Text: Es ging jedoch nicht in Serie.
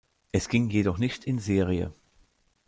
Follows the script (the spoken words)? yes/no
yes